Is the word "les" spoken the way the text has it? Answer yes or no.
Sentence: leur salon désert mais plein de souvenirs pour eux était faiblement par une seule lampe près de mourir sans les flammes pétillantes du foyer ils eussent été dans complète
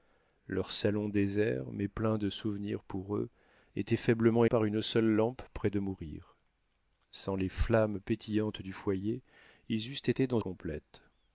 yes